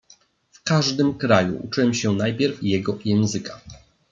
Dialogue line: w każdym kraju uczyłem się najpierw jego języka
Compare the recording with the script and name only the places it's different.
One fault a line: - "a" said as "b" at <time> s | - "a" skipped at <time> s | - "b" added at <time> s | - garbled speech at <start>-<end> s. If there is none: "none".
none